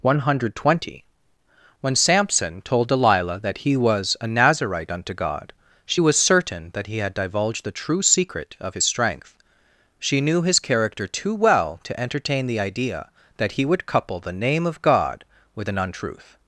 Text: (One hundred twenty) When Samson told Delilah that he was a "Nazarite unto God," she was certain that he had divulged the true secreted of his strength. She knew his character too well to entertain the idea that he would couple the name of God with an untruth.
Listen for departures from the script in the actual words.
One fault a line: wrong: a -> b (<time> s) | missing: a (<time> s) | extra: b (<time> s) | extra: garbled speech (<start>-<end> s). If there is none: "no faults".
wrong: secreted -> secret (8.0 s)